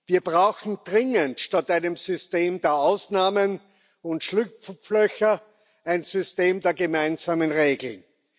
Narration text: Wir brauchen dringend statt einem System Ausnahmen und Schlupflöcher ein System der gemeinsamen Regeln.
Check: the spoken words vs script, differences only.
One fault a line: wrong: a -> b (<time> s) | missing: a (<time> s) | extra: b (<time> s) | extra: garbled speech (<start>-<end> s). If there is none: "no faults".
extra: der (2.6 s)